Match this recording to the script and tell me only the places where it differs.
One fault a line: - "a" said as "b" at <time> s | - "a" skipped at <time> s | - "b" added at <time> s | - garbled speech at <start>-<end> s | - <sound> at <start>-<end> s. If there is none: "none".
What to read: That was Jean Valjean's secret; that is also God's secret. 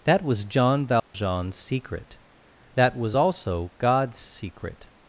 - dropout at 1.0-1.1 s
- "is" said as "was" at 3.0 s